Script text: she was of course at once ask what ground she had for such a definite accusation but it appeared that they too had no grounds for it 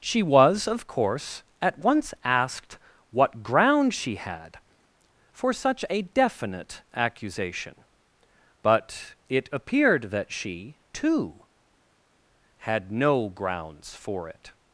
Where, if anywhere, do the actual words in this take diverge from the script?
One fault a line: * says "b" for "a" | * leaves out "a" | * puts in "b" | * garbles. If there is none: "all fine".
* says "asked" for "ask"
* says "she" for "they"